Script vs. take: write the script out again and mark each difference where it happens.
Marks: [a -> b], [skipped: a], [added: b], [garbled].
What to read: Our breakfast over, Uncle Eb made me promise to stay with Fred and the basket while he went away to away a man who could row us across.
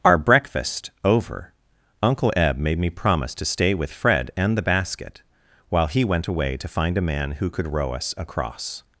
Our breakfast over, Uncle Eb made me promise to stay with Fred and the basket while he went away to [away -> find] a man who could row us across.